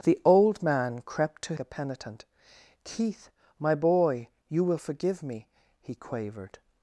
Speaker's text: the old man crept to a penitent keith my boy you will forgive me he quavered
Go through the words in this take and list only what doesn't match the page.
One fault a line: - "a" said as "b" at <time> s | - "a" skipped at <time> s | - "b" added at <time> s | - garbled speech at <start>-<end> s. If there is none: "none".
none